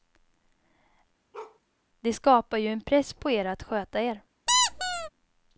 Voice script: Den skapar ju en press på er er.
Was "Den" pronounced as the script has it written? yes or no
no